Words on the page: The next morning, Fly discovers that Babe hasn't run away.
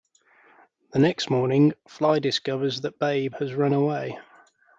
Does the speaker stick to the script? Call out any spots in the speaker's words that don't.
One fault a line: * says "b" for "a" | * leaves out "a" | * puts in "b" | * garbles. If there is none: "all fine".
* says "has" for "hasn't"